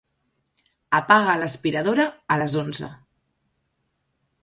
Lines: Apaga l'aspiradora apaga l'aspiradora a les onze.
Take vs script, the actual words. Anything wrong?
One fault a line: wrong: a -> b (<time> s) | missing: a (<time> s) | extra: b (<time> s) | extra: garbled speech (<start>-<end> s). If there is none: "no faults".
missing: apaga l'aspiradora (2.1 s)